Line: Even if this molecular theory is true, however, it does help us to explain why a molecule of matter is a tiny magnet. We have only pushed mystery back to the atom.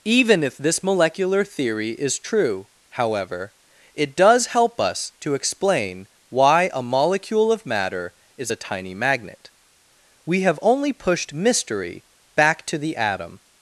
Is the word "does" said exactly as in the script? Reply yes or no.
yes